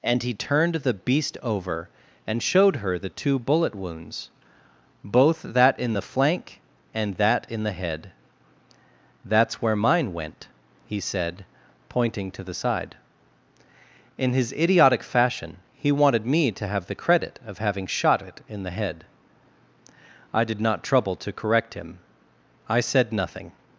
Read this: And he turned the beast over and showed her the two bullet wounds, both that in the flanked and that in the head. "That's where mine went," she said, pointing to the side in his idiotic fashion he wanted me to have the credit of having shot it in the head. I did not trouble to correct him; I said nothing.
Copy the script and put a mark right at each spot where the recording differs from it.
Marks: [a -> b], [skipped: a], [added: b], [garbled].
And he turned the beast over and showed her the two bullet wounds, both that in the [flanked -> flank] and that in the head. "That's where mine went," [she -> he] said, pointing to the side in his idiotic fashion he wanted me to have the credit of having shot it in the head. I did not trouble to correct him; I said nothing.